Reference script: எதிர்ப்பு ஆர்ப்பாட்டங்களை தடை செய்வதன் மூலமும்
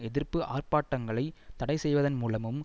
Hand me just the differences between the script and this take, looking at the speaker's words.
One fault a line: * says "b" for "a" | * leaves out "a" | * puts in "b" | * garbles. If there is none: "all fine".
all fine